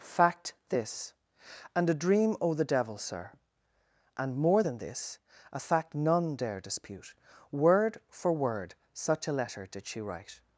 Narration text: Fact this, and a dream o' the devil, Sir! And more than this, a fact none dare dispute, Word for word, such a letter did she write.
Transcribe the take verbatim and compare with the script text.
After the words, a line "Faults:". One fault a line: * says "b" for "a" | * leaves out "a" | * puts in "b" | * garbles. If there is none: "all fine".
Fact this, and a dream o' the devil, Sir! And more than this, a fact none dare dispute, Word for word, such a letter did she write.
Faults:
all fine